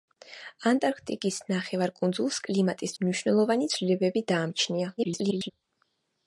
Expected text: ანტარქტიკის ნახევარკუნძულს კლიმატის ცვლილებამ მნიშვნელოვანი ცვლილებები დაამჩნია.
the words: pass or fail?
fail